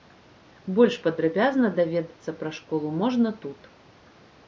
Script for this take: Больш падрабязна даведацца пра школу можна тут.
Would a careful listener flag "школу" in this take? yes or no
no